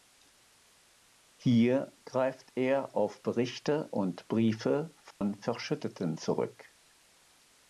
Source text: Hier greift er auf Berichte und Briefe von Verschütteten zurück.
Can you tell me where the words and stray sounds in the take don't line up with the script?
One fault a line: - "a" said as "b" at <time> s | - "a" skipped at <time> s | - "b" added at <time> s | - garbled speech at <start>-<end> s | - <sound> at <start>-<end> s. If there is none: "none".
- dropout at 5.1-5.2 s